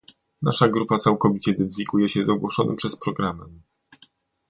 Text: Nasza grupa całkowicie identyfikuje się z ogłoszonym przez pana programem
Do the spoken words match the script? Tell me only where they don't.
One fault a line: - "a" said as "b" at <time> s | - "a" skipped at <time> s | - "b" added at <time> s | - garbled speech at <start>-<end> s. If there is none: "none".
- "pana" skipped at 3.0 s